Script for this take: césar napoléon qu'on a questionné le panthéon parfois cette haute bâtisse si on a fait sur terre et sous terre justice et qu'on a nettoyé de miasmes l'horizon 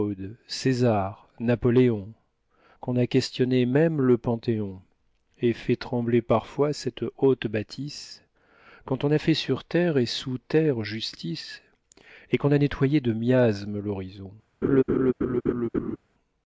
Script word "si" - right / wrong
wrong